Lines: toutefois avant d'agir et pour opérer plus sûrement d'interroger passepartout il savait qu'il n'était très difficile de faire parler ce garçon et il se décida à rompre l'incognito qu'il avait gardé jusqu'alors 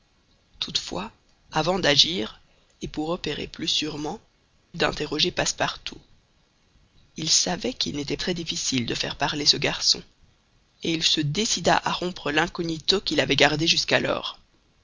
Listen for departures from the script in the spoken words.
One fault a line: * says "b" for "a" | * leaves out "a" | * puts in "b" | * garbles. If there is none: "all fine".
all fine